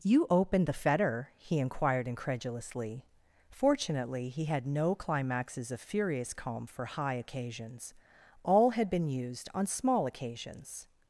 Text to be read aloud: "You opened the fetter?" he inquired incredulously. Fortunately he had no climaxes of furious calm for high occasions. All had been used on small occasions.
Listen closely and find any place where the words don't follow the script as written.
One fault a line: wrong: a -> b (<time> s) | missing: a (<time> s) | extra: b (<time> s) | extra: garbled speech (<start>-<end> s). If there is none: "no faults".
no faults